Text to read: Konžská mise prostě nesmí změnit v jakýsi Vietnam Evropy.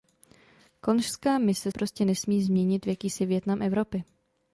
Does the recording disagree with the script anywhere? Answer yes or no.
no